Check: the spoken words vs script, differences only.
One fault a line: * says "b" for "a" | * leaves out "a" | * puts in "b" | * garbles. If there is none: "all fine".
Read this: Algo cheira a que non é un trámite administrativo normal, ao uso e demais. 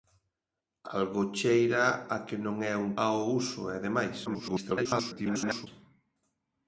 * leaves out "trámite administrativo normal"
* garbles